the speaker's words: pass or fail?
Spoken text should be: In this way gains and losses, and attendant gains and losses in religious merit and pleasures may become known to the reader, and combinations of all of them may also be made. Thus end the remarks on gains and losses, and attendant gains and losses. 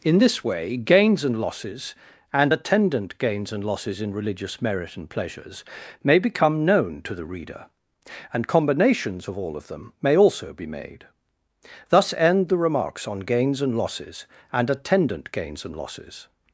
pass